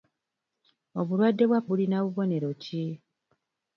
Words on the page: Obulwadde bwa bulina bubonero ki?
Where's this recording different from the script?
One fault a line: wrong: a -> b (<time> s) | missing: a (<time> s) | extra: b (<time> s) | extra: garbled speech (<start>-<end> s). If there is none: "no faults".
no faults